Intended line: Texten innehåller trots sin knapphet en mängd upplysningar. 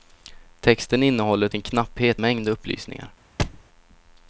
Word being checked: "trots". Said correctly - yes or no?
no